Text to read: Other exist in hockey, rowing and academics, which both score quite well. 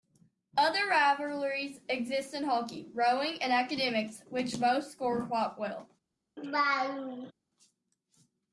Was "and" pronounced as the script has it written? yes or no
yes